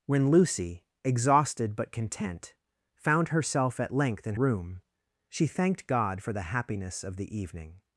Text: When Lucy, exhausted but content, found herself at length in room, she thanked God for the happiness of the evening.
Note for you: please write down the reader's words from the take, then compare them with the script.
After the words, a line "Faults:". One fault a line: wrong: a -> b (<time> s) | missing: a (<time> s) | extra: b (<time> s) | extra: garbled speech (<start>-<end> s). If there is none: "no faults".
When Lucy, exhausted but content, found herself at length in room, she thanked God for the happiness of the evening.
Faults:
no faults